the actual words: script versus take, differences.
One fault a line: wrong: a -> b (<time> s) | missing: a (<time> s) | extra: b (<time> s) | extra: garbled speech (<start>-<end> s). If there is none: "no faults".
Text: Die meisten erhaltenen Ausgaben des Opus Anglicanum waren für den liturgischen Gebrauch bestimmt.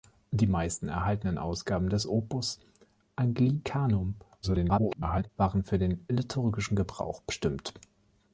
extra: garbled speech (4.4-5.3 s)